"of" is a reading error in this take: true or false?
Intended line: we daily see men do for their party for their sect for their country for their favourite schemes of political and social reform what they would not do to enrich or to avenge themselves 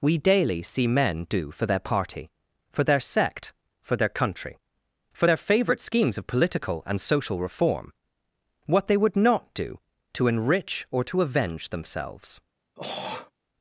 false